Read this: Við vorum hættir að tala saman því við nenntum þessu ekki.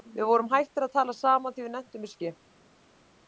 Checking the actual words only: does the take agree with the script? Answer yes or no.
yes